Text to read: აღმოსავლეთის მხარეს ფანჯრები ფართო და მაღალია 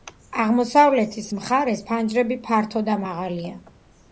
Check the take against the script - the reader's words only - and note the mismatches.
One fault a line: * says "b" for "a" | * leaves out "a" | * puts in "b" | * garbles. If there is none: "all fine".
all fine